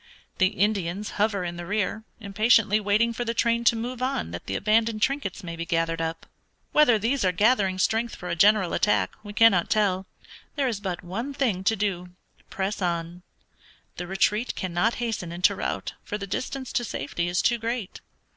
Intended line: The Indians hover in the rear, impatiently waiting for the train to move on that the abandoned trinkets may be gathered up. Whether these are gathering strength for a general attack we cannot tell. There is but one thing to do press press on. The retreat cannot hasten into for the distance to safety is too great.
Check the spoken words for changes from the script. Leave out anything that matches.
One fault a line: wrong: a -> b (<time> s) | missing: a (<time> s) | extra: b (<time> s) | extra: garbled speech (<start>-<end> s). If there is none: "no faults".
missing: press (12.8 s)
extra: rout (15.6 s)